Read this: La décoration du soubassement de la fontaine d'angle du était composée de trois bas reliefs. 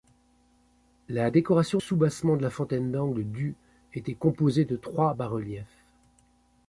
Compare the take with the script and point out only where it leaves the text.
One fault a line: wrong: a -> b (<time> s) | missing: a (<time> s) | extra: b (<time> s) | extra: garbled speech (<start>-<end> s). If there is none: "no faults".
missing: du (1.8 s)